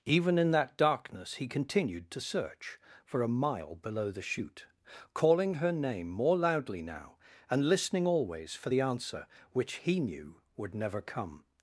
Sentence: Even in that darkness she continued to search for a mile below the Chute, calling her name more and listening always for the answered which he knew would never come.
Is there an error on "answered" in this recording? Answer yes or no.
yes